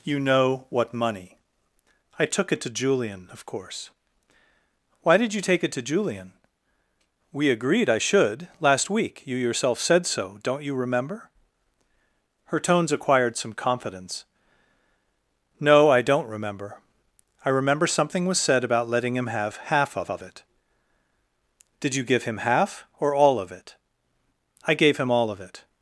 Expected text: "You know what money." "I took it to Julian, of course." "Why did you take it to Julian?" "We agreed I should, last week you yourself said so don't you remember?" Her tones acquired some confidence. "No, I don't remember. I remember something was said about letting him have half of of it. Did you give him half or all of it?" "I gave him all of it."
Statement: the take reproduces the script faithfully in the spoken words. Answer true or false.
true